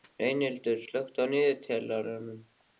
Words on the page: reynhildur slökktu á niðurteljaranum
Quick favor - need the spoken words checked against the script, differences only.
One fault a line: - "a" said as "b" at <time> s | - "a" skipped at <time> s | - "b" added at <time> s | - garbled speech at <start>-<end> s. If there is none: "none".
none